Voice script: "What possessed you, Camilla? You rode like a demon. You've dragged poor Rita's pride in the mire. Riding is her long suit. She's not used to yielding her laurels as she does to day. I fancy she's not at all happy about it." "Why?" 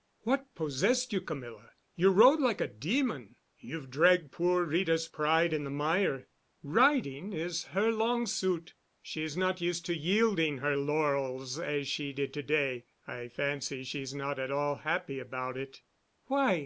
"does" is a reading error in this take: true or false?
true